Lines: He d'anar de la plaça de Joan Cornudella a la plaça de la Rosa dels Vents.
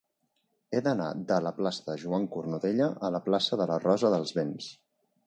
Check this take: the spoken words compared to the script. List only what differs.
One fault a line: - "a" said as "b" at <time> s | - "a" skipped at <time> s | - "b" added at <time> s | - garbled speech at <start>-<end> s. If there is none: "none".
none